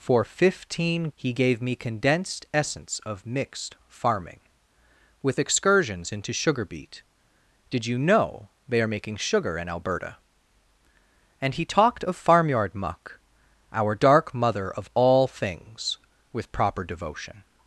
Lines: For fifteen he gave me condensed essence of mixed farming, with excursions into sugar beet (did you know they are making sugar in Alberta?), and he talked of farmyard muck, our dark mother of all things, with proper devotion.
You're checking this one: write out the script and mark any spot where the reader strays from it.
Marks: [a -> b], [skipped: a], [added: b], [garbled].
For fifteen he gave me condensed essence of mixed farming, with excursions into sugar beet (did you know they are making sugar in Alberta?), and he talked of farmyard muck, our dark mother of all things, with proper devotion.